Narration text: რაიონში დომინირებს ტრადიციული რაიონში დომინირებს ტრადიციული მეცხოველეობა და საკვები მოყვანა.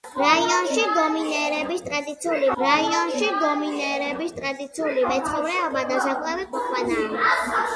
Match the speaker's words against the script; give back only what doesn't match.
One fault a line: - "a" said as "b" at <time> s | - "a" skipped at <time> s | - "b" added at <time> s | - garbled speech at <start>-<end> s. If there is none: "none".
none